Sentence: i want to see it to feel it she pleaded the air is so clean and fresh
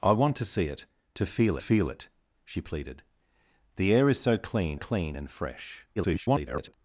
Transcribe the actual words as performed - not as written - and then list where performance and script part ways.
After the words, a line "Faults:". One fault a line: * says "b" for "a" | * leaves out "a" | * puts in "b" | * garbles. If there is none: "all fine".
i want to see it to feel feel it she pleaded the air is so clean clean and fresh [garbled]
Faults:
* puts in "feel"
* puts in "clean"
* garbles